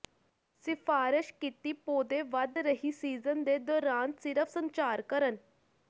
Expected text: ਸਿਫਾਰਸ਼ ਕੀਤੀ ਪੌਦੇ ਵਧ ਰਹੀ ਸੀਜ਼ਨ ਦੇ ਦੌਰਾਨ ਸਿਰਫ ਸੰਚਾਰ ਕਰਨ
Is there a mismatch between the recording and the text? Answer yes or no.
no